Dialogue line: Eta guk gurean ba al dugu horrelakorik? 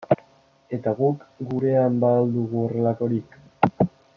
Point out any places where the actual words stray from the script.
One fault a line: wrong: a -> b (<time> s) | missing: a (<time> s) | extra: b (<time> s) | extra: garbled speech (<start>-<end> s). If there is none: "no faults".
no faults